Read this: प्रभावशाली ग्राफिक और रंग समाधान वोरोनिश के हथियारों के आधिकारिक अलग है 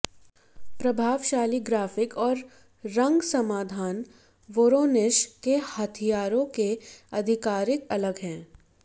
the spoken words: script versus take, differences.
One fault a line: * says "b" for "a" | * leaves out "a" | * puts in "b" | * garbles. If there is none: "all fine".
all fine